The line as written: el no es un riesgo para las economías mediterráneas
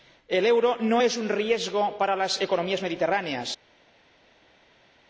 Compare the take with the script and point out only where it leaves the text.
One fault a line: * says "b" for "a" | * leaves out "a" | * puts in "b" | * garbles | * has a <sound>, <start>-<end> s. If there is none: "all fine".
* puts in "euro"